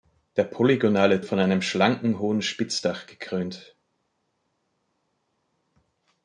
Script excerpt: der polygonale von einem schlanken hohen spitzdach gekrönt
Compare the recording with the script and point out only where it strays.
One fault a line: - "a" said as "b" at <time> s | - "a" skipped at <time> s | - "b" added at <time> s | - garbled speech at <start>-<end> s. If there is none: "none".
none